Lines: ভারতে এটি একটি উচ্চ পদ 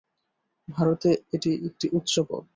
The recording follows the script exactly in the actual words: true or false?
true